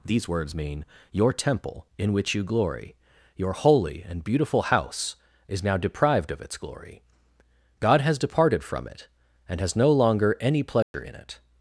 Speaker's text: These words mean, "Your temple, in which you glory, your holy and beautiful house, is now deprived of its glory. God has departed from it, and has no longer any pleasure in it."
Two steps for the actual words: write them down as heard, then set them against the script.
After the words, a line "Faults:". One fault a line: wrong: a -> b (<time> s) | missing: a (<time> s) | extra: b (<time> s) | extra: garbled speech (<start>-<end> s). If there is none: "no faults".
These words mean, "Your temple, in which you glory, your holy and beautiful house, is now deprived of its glory. God has departed from it, and has no longer any pleasure in it."
Faults:
no faults